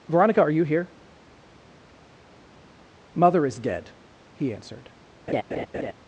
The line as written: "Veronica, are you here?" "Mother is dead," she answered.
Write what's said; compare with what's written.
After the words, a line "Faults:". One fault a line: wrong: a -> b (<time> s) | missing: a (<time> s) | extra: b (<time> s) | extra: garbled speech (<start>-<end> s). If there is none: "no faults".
"Veronica, are you here?" "Mother is dead," he answered.
Faults:
wrong: she -> he (4.3 s)